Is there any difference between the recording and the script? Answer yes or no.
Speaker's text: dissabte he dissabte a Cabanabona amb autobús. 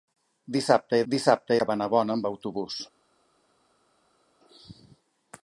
no